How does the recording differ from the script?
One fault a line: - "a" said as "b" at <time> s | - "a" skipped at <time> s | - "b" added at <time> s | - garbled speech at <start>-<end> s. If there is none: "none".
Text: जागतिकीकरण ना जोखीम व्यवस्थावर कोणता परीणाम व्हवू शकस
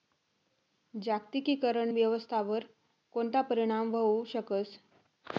- "ना जोखीम" skipped at 1.9 s